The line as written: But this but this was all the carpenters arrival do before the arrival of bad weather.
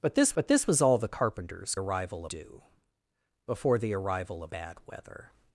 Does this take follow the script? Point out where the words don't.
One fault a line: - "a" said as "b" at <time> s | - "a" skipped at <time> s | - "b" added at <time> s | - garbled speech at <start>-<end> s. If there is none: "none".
none